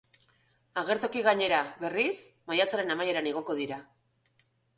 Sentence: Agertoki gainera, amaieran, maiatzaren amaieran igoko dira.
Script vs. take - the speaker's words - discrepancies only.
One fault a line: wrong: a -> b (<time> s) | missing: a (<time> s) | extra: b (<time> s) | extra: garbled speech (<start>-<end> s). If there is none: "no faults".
wrong: amaieran -> berriz (1.8 s)